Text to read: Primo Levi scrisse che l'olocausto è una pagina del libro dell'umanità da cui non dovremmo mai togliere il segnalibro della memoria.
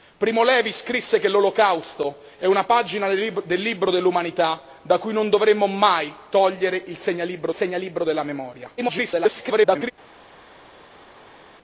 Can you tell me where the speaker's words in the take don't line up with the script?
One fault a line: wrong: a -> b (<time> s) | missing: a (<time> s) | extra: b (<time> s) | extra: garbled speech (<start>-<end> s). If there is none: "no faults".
extra: segnalibro (7.5 s)
extra: garbled speech (8.8-9.9 s)